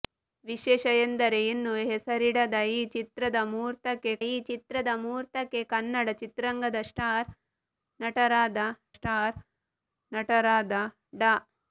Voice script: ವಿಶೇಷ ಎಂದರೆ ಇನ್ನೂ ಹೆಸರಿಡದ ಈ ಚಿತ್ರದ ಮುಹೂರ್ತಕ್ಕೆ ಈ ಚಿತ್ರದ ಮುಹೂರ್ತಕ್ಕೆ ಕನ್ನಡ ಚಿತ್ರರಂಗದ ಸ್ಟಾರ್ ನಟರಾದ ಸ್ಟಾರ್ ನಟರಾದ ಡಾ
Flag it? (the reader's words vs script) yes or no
no